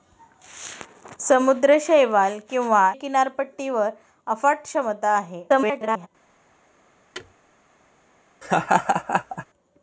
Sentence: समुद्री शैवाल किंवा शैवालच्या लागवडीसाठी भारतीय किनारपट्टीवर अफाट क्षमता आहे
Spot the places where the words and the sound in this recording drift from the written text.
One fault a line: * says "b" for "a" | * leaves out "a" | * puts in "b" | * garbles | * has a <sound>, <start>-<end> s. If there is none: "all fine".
* leaves out "शैवालच्या लागवडीसाठी भारतीय"
* garbles
* has a thud, 7.1-7.3 s
* has a laugh, 8.4-9.5 s